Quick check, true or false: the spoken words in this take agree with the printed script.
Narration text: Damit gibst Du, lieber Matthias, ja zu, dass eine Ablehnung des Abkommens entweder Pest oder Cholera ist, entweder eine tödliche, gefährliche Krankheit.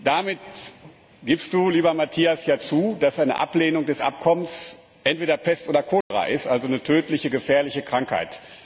false